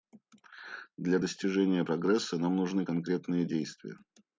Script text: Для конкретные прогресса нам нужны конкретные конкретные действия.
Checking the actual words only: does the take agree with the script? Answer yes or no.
no